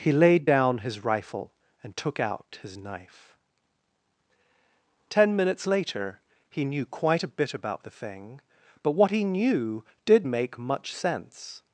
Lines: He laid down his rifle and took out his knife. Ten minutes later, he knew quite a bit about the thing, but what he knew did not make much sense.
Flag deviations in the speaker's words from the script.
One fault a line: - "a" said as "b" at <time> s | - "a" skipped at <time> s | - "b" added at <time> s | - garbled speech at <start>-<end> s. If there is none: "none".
- "not" skipped at 10.3 s